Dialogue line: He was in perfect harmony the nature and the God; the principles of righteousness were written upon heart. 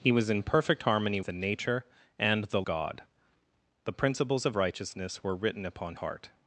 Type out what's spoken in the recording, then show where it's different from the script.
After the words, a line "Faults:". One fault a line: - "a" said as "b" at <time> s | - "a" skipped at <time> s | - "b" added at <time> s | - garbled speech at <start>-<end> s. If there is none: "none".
He was in perfect harmony the nature and the God; the principles of righteousness were written upon heart.
Faults:
none